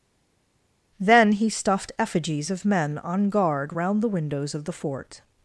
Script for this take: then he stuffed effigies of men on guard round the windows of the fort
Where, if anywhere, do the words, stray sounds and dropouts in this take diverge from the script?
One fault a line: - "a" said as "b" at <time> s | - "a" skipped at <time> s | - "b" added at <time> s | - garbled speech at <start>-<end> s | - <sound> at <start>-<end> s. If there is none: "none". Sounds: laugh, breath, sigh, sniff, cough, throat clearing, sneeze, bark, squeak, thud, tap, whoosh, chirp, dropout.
none